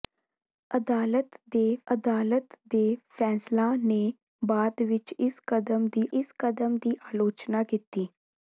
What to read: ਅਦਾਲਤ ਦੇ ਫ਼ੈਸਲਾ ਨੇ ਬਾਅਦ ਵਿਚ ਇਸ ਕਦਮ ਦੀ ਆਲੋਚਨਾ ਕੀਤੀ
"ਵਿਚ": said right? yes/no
yes